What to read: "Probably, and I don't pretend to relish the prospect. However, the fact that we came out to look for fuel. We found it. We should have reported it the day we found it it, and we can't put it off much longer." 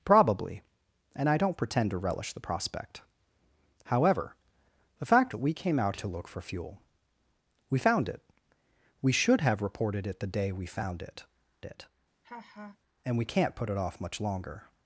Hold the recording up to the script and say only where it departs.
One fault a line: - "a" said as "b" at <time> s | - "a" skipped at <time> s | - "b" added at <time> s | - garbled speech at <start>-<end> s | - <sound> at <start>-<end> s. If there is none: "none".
- laugh at 12.2-12.8 s